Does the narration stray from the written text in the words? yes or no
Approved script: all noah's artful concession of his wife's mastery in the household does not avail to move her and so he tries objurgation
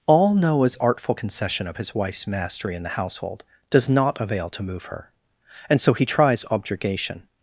no